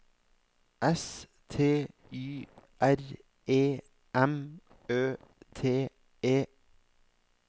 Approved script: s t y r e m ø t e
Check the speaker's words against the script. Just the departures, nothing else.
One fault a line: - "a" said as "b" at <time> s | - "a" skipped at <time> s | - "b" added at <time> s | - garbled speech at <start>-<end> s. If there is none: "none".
none